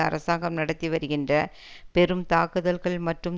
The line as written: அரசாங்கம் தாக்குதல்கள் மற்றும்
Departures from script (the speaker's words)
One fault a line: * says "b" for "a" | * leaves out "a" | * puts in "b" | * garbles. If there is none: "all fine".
* puts in "நடத்தி வருகின்ற பெரும்"